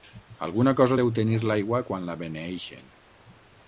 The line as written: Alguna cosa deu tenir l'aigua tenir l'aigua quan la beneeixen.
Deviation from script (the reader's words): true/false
true